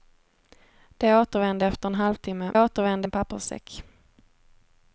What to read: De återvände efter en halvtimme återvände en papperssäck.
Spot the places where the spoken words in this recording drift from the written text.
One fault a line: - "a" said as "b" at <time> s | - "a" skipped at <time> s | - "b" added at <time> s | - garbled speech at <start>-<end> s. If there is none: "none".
none